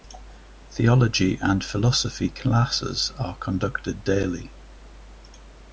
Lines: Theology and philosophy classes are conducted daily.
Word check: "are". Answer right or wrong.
right